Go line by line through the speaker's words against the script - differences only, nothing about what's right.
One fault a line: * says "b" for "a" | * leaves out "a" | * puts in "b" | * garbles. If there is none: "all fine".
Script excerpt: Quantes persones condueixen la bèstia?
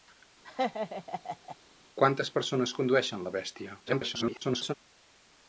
* garbles